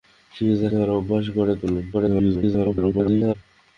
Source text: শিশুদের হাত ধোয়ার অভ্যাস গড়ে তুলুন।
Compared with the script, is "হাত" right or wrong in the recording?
wrong